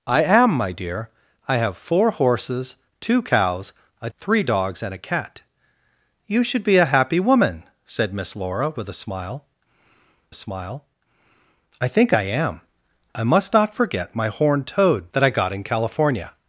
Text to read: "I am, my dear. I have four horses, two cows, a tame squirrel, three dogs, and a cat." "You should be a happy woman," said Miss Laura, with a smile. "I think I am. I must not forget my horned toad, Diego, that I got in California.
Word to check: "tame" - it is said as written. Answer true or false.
false